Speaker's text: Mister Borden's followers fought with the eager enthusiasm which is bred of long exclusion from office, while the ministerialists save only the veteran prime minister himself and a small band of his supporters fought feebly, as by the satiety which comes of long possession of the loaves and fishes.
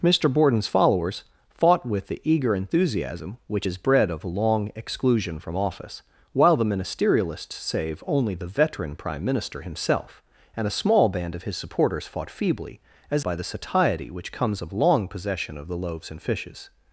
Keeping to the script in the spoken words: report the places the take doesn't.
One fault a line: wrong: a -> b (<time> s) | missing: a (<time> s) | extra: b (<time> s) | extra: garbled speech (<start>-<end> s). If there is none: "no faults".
no faults